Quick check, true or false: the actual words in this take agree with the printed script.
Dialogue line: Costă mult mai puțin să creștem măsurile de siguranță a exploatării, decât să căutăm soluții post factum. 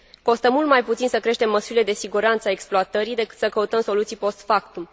true